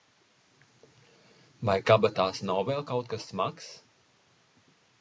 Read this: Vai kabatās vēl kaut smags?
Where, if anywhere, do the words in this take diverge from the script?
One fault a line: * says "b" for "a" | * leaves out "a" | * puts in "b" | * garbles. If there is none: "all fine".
* puts in "nav"
* puts in "kas"